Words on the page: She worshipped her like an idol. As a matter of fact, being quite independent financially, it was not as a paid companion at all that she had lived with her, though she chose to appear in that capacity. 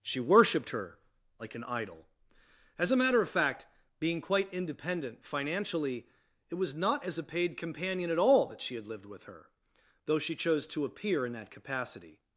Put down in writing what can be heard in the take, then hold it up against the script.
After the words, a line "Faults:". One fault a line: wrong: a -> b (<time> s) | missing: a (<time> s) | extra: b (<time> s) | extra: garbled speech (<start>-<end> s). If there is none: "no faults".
She worshipped her like an idol. As a matter of fact, being quite independent financially, it was not as a paid companion at all that she had lived with her, though she chose to appear in that capacity.
Faults:
no faults